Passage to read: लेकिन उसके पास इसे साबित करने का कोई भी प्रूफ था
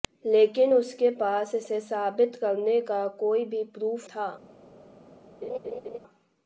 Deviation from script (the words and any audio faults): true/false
true